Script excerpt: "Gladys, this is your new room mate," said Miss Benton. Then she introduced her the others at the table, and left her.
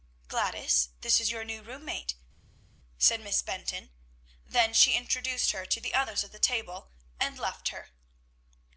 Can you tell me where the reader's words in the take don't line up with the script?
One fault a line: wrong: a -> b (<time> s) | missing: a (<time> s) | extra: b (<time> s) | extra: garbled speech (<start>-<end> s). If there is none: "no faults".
extra: to (5.7 s)